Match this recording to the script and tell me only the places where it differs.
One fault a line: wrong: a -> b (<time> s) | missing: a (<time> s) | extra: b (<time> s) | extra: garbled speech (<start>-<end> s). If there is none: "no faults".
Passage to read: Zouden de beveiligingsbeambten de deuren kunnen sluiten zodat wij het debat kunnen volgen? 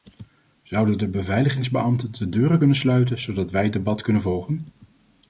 no faults